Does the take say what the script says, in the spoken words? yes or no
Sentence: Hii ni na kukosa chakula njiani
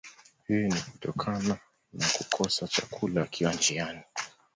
no